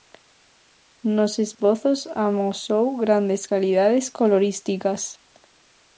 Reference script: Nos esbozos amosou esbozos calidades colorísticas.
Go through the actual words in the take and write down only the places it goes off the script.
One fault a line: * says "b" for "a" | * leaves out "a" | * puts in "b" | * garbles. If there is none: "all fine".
* says "grandes" for "esbozos"